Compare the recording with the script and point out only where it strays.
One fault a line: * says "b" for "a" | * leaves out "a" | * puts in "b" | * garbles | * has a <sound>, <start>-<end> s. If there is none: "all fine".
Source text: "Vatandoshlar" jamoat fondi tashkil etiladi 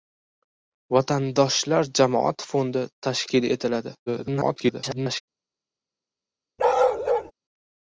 * garbles
* has a bark, 6.6-7.3 s